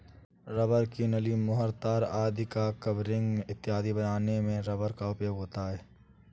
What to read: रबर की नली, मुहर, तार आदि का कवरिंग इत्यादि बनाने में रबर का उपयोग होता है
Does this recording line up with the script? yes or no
yes